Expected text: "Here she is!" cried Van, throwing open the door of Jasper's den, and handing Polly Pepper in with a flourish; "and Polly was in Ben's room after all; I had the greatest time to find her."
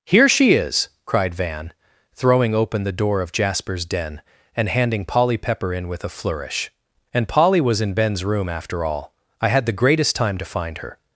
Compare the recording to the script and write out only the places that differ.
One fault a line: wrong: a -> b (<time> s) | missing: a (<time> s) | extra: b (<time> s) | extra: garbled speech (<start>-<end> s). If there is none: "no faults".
no faults